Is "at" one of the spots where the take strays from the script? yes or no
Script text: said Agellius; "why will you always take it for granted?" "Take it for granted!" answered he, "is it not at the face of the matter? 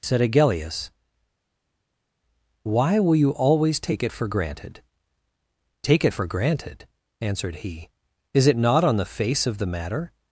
yes